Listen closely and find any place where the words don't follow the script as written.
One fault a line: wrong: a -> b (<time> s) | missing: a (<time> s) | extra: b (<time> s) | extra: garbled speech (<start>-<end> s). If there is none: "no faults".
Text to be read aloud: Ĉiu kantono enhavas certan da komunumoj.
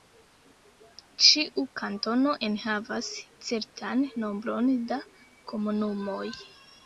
extra: nombron (4.2 s)